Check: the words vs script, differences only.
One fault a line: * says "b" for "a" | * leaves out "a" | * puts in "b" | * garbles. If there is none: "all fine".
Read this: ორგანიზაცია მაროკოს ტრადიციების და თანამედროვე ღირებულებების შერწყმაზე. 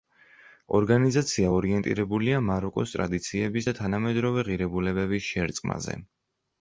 * puts in "ორიენტირებულია"